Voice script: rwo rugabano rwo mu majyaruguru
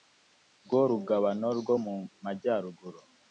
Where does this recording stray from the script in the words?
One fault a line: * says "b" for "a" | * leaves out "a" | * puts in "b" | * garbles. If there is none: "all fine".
all fine